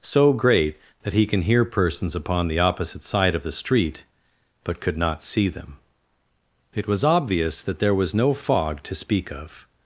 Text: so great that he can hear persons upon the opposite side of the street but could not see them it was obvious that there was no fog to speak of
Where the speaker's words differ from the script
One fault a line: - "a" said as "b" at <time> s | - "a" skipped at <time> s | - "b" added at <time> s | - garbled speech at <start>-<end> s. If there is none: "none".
none